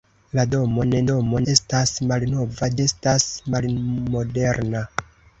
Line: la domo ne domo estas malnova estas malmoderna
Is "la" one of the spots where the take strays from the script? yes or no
no